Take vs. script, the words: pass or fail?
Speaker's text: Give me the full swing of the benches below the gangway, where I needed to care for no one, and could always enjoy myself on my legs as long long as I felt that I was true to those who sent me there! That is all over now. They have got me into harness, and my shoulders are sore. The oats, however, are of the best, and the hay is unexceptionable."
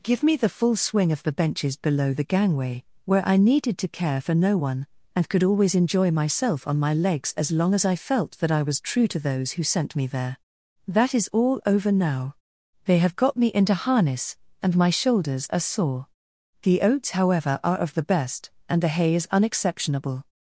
fail